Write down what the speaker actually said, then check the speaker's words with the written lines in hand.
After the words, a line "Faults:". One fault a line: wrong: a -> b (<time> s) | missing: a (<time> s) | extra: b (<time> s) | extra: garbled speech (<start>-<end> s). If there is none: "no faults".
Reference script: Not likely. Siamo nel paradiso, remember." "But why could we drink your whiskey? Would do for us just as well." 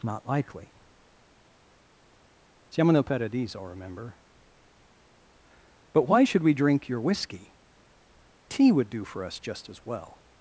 Not likely. Siamo nel paradiso, remember." "But why should we drink your whiskey? Tea would do for us just as well."
Faults:
wrong: could -> should (6.2 s)
extra: Tea (8.5 s)